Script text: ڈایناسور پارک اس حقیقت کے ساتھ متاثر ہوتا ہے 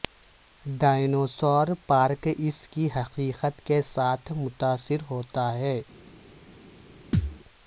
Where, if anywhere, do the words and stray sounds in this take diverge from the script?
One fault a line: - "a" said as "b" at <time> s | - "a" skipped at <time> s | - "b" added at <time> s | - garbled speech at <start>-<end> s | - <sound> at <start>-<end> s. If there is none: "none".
- "کی" added at 2.7 s
- thud at 7.1-7.4 s